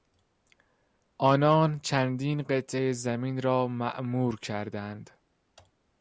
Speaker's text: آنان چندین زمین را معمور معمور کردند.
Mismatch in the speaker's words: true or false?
true